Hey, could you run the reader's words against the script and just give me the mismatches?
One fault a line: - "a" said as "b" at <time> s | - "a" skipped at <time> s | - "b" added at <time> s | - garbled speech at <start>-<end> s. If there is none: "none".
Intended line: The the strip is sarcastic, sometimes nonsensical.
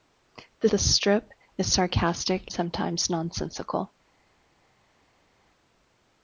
none